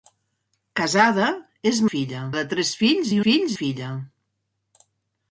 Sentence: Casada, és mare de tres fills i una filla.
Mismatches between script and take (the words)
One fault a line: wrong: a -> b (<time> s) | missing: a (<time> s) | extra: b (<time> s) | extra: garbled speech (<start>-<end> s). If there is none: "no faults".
wrong: mare -> filla (1.9 s)
wrong: una -> fills (3.3 s)